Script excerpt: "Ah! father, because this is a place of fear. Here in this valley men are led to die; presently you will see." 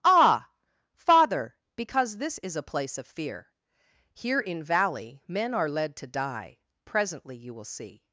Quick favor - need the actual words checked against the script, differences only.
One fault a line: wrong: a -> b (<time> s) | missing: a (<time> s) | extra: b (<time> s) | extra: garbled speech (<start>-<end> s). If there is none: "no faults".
missing: this (4.6 s)